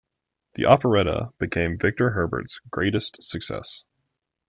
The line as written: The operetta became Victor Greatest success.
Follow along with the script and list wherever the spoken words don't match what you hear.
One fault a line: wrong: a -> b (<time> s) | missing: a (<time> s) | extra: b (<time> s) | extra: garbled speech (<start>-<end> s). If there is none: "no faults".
extra: Herbert's (2.1 s)